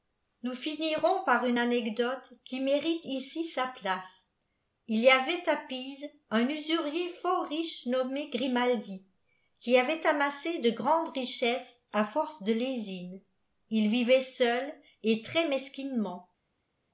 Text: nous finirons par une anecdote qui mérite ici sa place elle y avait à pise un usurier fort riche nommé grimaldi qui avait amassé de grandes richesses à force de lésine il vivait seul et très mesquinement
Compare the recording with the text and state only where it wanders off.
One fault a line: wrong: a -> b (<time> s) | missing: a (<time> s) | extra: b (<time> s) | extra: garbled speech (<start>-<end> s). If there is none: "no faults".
wrong: elle -> il (4.9 s)